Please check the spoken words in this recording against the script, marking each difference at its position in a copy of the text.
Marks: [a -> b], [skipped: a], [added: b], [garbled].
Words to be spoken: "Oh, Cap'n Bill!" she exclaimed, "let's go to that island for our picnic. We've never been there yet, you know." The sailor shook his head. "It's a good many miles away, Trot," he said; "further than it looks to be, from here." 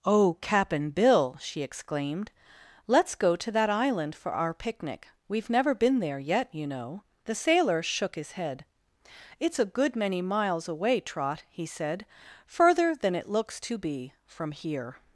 "Oh, Cap'n Bill!" she exclaimed, "let's go to that island for our picnic. We've never been there yet, you know." The sailor shook his head. "It's a good many miles away, Trot," he said; "further than it looks to be, from here."